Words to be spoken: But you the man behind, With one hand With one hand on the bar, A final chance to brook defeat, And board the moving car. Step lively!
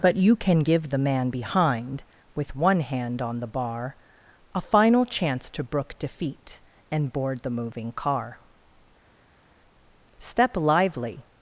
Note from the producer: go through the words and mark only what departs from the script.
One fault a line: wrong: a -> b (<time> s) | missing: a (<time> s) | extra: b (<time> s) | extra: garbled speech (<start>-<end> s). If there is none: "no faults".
extra: can give (0.3 s)
missing: With one hand (3.2 s)